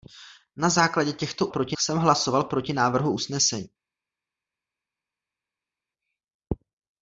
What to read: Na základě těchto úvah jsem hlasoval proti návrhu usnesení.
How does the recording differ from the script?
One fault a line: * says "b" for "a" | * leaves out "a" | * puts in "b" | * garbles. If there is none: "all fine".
* says "proti" for "úvah"